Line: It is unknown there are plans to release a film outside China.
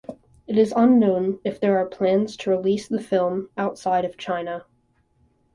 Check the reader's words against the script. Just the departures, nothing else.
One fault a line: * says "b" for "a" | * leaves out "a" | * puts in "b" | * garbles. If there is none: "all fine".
* puts in "if"
* says "the" for "a"
* puts in "of"